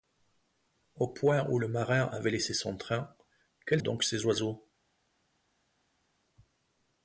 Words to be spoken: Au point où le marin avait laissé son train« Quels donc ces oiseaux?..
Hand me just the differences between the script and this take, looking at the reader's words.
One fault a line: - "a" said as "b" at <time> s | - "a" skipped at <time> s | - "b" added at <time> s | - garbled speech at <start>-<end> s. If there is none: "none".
none